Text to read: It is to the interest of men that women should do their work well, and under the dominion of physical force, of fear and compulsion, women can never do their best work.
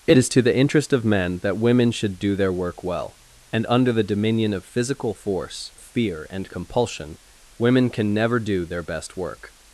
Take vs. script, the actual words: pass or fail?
fail